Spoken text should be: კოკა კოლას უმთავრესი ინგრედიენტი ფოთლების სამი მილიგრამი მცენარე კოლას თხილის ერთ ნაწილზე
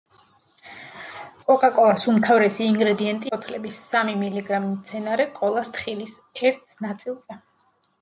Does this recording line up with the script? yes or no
yes